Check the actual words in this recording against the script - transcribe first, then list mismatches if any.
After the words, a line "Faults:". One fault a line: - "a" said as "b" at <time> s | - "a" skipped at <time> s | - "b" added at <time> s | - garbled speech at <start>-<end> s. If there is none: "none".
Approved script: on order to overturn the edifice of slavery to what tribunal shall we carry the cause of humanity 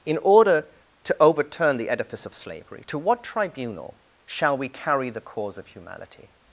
in order to overturn the edifice of slavery to what tribunal shall we carry the cause of humanity
Faults:
- "on" said as "in" at 0.1 s